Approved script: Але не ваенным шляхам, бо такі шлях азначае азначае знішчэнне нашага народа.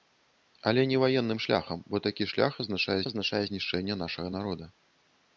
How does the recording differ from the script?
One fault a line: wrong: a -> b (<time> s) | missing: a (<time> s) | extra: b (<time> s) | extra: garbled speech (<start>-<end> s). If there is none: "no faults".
no faults